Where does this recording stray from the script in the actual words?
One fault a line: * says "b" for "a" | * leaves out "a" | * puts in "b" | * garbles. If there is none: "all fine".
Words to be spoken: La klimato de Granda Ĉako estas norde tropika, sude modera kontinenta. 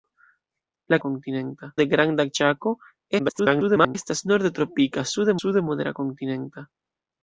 * says "kontinenta" for "klimato"
* garbles
* puts in "sude"